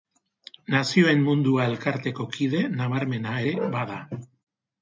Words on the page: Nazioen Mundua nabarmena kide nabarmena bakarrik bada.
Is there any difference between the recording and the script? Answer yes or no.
yes